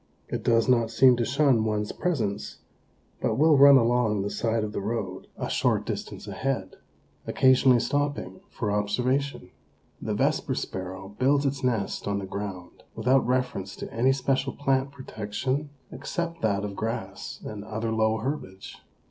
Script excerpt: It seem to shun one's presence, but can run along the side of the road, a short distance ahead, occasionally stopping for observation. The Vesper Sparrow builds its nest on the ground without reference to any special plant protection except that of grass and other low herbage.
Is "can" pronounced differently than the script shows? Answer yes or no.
yes